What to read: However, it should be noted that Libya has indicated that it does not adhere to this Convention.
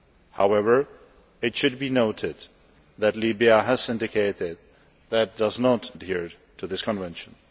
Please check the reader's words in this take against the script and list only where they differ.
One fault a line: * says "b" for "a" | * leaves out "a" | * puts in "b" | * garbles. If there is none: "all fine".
all fine